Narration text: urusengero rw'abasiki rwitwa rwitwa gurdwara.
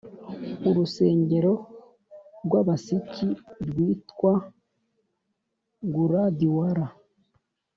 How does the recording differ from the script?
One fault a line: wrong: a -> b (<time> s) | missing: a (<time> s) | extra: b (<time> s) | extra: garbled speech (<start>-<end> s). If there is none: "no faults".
missing: rwitwa (4.3 s)